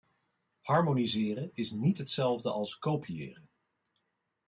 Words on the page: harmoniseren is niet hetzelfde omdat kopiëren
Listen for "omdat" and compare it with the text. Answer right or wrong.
wrong